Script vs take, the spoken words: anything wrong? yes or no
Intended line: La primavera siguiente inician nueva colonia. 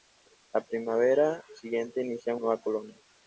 no